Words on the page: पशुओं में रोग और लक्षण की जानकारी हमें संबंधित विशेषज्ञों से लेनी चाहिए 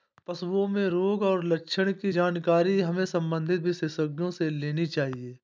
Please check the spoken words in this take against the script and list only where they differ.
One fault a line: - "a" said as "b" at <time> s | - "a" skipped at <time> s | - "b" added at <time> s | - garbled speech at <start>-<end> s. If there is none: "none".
none